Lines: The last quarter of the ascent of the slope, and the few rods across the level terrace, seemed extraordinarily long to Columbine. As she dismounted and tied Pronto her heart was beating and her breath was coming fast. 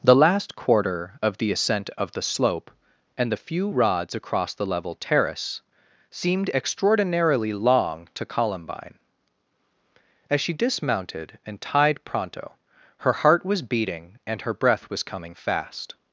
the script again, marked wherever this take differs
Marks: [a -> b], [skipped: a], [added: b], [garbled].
The last quarter of the ascent of the slope, and the few rods across the level terrace, seemed extraordinarily long to Columbine. As she dismounted and tied Pronto her heart was beating and her breath was coming fast.